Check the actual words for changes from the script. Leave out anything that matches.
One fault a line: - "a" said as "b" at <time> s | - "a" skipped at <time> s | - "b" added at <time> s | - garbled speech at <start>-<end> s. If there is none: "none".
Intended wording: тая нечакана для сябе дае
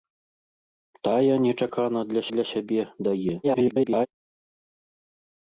- "для" added at 2.3 s
- garbled speech at 3.4-4.1 s